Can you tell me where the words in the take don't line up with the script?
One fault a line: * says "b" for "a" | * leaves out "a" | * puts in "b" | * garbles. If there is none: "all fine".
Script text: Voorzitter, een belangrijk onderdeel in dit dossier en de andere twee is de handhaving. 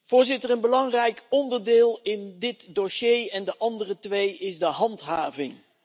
all fine